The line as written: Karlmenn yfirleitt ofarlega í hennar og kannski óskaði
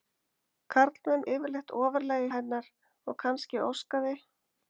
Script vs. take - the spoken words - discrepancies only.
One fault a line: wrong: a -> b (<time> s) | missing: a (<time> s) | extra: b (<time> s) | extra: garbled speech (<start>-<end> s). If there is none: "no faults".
no faults